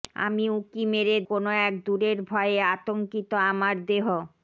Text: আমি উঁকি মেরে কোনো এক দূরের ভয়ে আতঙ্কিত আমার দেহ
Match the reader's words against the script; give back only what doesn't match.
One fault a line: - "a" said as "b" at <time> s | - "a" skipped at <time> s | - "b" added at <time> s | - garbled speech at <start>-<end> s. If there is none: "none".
none